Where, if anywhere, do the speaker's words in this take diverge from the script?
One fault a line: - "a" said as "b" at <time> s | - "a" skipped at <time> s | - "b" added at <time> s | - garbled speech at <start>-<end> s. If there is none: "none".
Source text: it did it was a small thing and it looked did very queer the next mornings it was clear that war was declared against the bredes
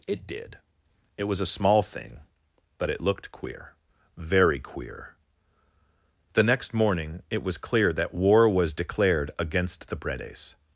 - "and" said as "but" at 2.8 s
- "did" said as "queer" at 3.3 s
- "mornings" said as "morning" at 6.7 s